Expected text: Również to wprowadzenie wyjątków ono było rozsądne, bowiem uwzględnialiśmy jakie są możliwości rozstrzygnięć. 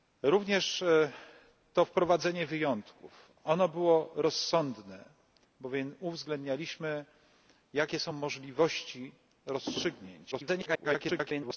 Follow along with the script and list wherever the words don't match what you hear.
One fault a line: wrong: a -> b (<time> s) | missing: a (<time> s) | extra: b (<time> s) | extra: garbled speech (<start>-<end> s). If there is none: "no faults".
extra: garbled speech (10.3-11.6 s)